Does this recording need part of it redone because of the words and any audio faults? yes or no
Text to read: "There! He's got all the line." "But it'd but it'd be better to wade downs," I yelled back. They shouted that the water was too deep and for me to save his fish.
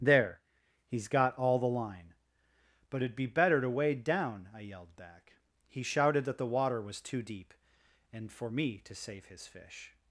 yes